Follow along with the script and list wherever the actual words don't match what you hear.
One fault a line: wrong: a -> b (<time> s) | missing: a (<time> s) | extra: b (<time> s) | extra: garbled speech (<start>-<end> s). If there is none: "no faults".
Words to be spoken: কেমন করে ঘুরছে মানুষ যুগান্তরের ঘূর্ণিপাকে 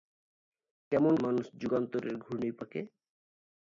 missing: করে ঘুরছে (1.1 s)